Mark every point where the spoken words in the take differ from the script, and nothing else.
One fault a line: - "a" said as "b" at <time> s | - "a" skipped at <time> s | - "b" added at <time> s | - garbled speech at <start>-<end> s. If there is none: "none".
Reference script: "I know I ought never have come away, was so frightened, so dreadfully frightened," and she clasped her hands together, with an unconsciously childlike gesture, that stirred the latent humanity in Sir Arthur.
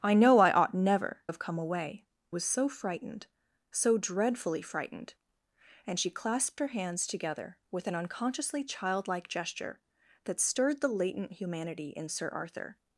none